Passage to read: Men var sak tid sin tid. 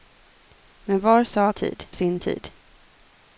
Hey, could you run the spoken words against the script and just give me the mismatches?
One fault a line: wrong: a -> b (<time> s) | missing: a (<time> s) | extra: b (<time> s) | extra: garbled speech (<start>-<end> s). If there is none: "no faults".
no faults